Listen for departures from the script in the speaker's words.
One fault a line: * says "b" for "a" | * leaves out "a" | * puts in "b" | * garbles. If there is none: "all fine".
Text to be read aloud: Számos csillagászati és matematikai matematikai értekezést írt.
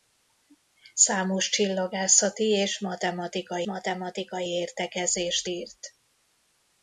all fine